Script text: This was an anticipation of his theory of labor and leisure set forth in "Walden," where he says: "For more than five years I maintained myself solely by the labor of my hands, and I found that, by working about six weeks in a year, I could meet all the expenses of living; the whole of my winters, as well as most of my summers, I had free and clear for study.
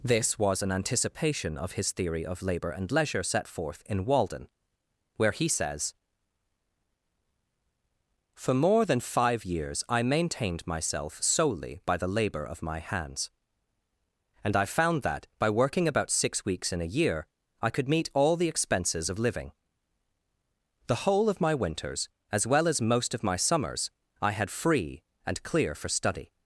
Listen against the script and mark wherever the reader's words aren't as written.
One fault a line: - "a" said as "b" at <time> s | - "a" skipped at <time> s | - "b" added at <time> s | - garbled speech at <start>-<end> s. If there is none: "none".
none